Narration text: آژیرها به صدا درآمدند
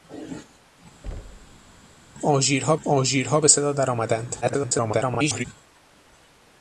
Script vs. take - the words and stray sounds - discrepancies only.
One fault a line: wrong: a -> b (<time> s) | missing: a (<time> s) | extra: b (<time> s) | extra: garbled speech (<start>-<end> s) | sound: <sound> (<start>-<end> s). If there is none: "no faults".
sound: thud (1.0-1.8 s)
extra: آژیرها (2.9 s)
extra: garbled speech (4.4-5.5 s)